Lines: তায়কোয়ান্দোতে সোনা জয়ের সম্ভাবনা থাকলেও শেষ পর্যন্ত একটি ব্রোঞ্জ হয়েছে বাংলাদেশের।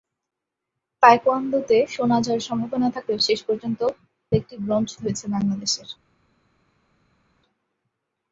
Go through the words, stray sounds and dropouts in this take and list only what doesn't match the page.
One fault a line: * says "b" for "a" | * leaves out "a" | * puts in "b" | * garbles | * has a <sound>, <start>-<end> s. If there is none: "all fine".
all fine